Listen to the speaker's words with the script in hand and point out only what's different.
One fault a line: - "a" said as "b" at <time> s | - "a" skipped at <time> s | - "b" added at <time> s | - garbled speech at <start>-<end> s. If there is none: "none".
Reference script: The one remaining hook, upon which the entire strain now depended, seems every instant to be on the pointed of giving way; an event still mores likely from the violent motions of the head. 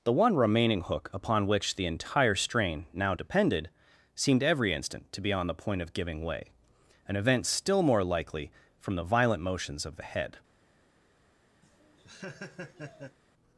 - "seems" said as "seemed" at 4.1 s
- "pointed" said as "point" at 5.5 s
- "mores" said as "more" at 7.8 s